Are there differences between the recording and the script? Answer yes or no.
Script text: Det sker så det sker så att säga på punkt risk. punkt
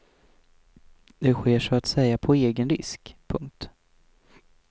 yes